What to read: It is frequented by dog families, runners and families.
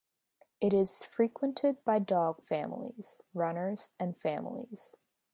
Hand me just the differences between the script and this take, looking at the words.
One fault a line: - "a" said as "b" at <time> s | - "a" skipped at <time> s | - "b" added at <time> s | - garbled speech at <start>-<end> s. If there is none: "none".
none